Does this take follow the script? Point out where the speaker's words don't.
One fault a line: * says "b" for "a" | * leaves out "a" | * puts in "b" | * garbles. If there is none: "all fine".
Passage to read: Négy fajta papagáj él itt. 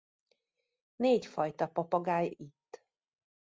* leaves out "él"